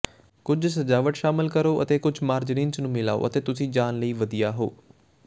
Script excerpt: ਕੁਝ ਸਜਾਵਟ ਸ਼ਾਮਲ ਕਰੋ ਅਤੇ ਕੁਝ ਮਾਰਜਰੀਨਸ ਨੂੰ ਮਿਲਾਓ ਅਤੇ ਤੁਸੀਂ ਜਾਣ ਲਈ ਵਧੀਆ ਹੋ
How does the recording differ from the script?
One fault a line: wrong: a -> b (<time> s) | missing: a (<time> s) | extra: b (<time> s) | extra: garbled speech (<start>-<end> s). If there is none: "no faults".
no faults